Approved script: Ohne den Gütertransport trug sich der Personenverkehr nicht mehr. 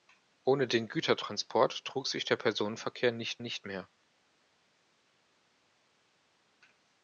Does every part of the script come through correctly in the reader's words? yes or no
no